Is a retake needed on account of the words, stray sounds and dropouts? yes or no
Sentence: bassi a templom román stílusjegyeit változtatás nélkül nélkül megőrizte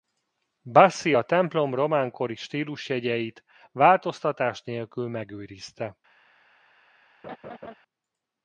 yes